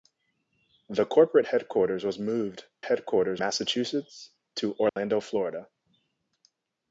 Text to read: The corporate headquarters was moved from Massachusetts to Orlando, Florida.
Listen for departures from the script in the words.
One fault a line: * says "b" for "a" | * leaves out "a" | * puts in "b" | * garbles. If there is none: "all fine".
* says "headquarters" for "from"